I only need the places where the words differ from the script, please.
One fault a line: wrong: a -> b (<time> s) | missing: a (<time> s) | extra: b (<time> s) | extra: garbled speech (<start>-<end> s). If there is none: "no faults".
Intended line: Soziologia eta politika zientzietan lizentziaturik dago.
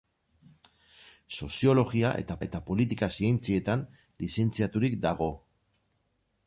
extra: eta (2.5 s)